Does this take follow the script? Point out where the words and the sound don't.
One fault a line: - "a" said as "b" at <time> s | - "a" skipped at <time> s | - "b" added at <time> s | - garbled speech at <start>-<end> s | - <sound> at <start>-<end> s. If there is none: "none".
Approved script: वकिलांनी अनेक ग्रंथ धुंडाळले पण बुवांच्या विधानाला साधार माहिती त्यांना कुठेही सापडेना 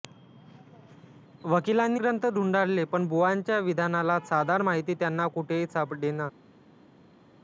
- "अनेक" skipped at 2.0 s